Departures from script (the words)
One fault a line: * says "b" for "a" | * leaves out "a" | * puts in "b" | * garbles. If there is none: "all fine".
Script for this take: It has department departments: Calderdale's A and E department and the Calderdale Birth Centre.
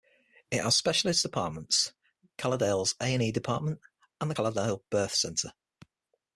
* says "specialist" for "department"